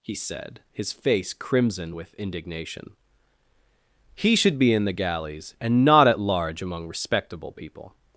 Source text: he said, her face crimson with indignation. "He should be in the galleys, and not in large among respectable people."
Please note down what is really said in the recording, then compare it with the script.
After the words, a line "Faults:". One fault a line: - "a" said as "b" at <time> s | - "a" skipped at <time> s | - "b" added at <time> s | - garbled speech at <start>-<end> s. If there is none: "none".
he said, his face crimson with indignation. "He should be in the galleys, and not at large among respectable people."
Faults:
- "her" said as "his" at 0.7 s
- "in" said as "at" at 6.1 s